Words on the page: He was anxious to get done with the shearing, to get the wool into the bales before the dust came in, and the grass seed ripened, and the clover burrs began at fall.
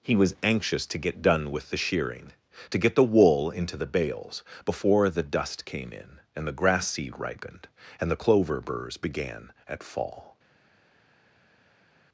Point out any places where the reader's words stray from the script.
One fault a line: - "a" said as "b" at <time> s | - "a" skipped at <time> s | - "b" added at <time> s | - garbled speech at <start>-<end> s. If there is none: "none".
none